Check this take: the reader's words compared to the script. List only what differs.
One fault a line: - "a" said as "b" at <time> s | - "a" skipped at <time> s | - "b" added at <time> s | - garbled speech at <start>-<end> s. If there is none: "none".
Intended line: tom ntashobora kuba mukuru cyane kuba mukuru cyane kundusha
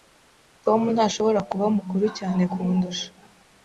- "kuba mukuru cyane" skipped at 2.4 s